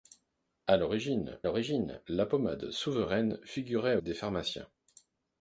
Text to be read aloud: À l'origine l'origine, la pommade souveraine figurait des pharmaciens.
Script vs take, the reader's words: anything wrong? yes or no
no